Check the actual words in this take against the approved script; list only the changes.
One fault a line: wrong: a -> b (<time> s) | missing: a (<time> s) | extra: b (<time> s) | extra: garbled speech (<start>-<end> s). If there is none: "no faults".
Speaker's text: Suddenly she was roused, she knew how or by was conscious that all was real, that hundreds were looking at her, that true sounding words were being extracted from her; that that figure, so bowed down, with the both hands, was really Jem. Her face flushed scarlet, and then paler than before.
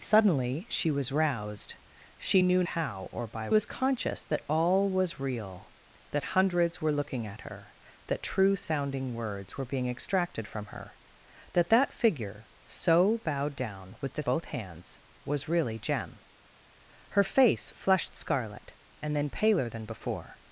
no faults